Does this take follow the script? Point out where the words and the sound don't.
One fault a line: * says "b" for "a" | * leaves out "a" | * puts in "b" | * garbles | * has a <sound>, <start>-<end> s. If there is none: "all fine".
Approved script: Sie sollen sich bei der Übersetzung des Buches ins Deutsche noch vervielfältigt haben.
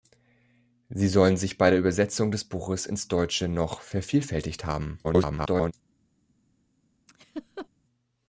* garbles
* has a laugh, 7.1-7.7 s